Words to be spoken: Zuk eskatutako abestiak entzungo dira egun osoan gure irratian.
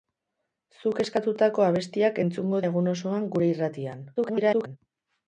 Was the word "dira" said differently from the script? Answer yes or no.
yes